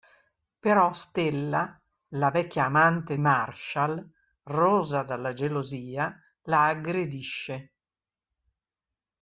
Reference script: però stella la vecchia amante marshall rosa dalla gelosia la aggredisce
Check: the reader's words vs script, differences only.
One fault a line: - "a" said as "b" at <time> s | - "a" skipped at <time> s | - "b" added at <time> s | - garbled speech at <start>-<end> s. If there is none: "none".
none